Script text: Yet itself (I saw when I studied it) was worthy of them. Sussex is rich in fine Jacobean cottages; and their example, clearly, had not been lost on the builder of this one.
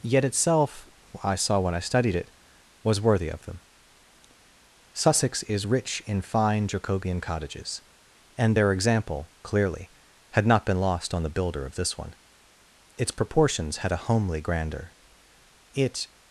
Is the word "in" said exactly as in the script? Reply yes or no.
yes